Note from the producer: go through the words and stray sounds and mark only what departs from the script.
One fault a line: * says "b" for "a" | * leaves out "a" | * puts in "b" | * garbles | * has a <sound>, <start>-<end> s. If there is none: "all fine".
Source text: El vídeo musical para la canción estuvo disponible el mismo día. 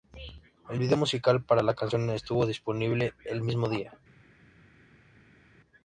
all fine